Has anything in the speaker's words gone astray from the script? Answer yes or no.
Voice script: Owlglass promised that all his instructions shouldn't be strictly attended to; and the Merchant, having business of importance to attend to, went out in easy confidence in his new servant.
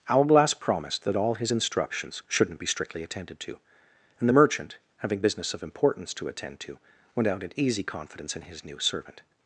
no